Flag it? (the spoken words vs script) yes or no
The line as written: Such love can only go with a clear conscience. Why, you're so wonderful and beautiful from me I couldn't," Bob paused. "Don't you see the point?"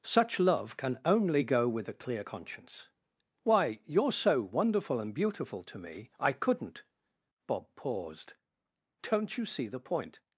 yes